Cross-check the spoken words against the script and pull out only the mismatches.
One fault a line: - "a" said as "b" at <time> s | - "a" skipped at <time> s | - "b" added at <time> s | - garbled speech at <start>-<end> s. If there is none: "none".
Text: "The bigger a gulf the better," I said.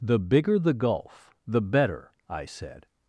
- "a" said as "the" at 0.6 s